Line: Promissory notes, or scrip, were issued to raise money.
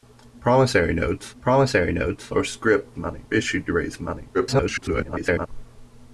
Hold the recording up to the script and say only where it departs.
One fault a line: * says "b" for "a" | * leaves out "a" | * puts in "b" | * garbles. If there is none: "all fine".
* puts in "promissory notes"
* says "money" for "were"
* garbles